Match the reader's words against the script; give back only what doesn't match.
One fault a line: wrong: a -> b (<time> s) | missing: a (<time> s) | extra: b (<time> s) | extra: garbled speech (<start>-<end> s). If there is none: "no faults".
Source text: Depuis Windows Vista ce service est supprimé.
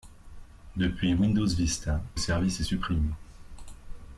missing: ce (2.0 s)